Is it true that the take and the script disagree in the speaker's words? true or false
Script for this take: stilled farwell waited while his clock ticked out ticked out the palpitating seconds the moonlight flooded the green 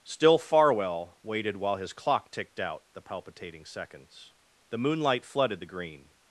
true